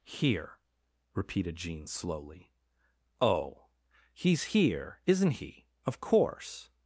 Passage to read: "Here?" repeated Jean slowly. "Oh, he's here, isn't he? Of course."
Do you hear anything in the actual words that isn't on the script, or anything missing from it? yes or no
no